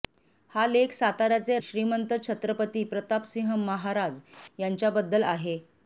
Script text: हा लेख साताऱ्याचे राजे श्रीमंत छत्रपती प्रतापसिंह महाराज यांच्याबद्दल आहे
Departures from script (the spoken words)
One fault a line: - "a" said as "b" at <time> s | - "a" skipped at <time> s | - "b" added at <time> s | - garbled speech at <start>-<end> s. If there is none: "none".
- "राजे" skipped at 1.6 s